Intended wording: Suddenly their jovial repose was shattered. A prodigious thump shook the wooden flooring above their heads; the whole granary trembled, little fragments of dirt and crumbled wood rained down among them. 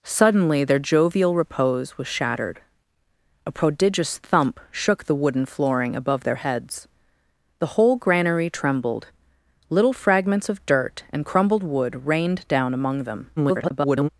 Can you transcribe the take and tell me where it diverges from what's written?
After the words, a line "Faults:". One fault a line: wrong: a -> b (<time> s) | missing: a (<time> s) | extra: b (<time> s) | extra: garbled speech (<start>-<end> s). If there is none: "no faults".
Suddenly their jovial repose was shattered. A prodigious thump shook the wooden flooring above their heads; the whole granary trembled, little fragments of dirt and crumbled wood rained down among them. [garbled]
Faults:
extra: garbled speech (13.4-14.1 s)